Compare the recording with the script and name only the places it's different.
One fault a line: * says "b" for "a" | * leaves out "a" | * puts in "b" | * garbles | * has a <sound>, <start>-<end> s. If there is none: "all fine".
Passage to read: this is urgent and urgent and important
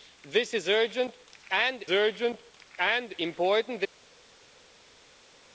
all fine